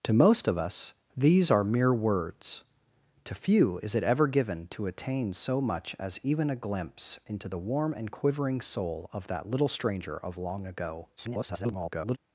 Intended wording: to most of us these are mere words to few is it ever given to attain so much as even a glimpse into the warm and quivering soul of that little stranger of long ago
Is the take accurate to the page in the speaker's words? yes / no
no